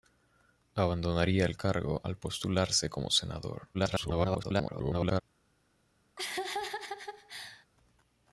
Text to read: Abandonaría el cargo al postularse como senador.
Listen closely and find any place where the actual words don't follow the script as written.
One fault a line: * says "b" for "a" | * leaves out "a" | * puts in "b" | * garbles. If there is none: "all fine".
* garbles